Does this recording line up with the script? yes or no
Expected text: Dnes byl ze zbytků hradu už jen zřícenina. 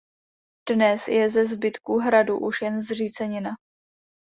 no